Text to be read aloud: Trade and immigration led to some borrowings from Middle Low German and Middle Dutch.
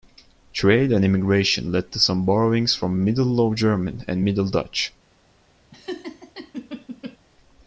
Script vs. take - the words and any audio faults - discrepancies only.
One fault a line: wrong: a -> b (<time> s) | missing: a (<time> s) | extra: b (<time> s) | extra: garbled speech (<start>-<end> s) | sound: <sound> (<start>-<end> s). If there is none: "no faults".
sound: laugh (5.7-7.2 s)